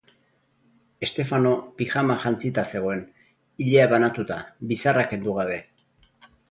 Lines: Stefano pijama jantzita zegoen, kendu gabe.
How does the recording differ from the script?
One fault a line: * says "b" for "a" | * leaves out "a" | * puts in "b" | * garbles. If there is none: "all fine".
* puts in "ilea banatuta bizarra"